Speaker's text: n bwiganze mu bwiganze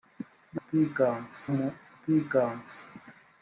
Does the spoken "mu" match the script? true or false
true